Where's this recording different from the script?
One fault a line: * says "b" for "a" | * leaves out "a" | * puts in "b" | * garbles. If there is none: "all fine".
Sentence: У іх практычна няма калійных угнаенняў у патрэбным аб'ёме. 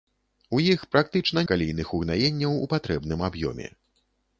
* leaves out "няма"